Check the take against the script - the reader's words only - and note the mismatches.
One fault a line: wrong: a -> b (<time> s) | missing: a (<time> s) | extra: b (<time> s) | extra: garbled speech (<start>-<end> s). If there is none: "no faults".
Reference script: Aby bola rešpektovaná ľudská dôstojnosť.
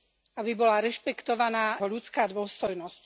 no faults